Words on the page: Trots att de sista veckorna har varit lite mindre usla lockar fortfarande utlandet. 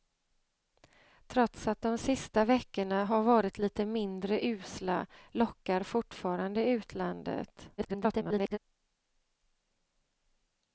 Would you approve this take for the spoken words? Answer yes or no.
no